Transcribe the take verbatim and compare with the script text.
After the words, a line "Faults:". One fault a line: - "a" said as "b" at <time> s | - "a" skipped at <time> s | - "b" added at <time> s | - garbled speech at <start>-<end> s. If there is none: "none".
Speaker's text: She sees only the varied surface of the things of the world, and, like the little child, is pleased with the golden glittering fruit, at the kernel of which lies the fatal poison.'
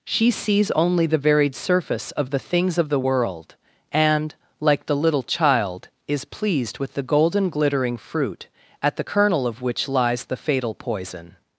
She sees only the varied surface of the things of the world, and, like the little child, is pleased with the golden glittering fruit, at the kernel of which lies the fatal poison.'
Faults:
none